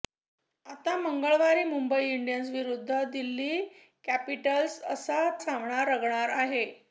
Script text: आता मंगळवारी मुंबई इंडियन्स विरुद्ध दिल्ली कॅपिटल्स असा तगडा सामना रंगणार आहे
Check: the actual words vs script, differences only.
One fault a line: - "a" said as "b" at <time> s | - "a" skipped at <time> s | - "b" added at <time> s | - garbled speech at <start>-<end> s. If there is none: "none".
- "तगडा" skipped at 5.2 s